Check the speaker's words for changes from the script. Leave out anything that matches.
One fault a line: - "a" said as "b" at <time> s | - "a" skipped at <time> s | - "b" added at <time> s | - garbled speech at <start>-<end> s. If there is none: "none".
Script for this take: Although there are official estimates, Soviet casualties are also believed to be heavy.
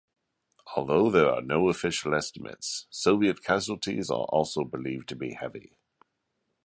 - "no" added at 1.4 s